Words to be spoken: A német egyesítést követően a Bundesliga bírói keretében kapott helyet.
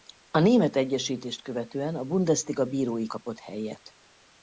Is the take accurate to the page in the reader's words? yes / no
no